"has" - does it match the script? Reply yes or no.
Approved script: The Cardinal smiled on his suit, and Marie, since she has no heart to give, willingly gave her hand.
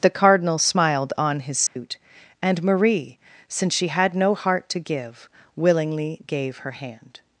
no